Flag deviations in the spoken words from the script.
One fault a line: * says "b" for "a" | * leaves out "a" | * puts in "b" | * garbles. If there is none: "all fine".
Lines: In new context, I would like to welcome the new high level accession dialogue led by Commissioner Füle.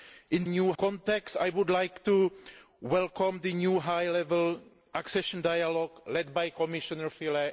all fine